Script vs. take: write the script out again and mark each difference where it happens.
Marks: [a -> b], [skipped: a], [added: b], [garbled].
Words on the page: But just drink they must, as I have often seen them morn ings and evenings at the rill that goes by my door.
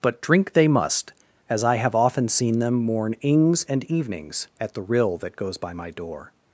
But [skipped: just] drink they must, as I have often seen them morn ings and evenings at the rill that goes by my door.